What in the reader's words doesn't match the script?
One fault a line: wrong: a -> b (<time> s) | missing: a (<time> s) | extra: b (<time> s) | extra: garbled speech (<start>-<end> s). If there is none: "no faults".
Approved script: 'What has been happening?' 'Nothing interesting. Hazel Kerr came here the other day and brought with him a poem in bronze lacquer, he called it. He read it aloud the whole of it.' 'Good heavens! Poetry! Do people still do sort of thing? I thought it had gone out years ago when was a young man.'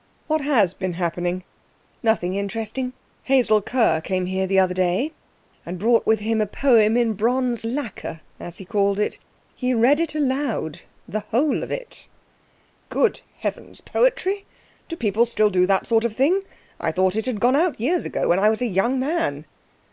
extra: as (8.4 s)
extra: that (15.7 s)
extra: I (18.4 s)